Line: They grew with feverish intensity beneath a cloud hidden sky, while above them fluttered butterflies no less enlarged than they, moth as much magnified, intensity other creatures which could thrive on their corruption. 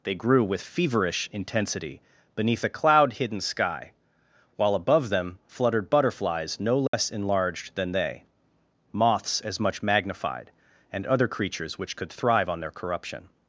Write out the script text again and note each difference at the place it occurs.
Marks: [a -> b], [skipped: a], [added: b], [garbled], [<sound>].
They grew with feverish intensity beneath a cloud hidden sky, while above them fluttered butterflies no less [dropout] enlarged than they, [moth -> moths] as much magnified, [intensity -> and] other creatures which could thrive on their corruption.